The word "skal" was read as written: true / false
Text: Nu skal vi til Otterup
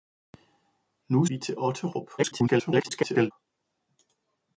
false